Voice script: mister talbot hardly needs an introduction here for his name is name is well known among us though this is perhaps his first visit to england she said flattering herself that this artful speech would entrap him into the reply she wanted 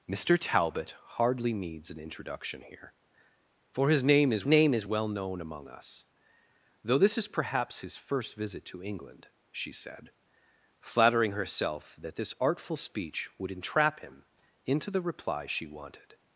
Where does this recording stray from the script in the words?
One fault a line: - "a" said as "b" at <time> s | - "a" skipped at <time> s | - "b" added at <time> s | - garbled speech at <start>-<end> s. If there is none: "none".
none